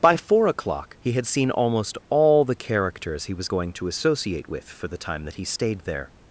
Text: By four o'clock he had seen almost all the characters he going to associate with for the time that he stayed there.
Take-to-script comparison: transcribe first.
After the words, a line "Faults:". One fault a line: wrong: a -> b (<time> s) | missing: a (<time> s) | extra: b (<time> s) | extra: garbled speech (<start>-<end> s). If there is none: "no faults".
By four o'clock he had seen almost all the characters he was going to associate with for the time that he stayed there.
Faults:
extra: was (3.4 s)